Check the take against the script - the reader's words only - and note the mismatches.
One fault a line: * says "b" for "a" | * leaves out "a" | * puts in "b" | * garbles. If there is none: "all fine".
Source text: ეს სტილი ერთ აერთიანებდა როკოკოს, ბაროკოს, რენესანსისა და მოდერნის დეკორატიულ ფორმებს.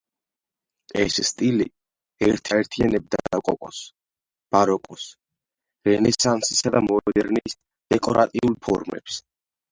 all fine